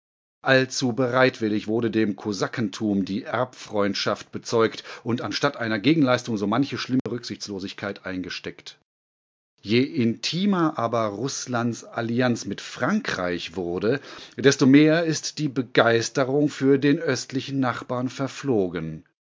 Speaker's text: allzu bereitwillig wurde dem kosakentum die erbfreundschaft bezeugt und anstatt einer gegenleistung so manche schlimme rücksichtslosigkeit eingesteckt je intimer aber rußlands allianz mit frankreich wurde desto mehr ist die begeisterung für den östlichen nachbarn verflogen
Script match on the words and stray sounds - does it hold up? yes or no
no